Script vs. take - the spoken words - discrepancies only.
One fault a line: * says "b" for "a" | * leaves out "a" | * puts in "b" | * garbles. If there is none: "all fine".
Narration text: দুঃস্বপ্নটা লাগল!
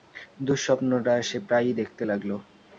* puts in "সে প্রায়ই দেখতে"